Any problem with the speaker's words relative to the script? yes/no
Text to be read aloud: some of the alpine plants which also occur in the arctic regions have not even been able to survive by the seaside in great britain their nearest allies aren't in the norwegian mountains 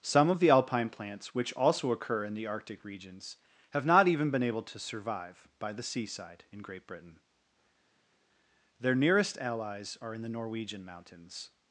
yes